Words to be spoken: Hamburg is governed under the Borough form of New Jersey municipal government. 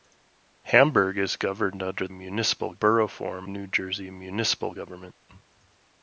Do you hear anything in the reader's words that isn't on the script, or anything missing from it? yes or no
yes